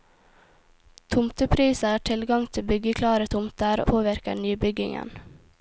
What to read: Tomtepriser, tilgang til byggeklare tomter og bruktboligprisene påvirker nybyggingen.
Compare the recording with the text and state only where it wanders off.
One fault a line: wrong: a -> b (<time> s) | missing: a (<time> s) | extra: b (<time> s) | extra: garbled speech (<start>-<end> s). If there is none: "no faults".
missing: og bruktboligprisene (3.8 s)